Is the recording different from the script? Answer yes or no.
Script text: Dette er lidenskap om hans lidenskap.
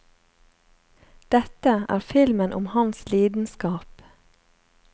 yes